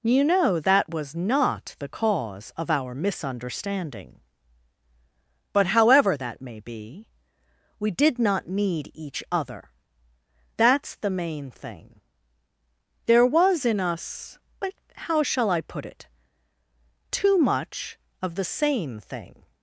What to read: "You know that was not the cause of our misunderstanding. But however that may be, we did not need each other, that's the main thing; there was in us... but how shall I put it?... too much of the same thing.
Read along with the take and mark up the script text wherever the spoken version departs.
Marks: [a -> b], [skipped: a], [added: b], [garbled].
"You know that was not the cause of our misunderstanding. But however that may be, we did not need each other, that's the main thing; there was in us... but how shall I put it?... too much of the same thing.